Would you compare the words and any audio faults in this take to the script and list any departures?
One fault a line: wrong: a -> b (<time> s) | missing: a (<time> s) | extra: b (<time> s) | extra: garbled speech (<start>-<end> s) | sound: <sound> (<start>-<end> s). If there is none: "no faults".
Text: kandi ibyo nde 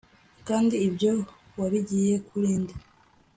extra: wabigiye kuri (1.6 s)